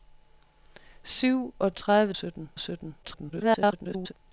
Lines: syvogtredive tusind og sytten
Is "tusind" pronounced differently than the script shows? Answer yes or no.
yes